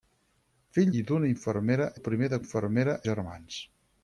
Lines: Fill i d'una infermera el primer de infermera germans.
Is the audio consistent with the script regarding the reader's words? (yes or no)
yes